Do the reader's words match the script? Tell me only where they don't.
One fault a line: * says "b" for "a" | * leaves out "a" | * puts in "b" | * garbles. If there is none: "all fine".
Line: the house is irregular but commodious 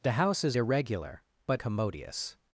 all fine